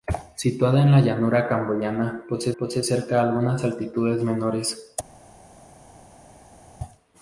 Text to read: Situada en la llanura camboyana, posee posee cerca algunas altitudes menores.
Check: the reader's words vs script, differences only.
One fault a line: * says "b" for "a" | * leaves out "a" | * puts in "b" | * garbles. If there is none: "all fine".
all fine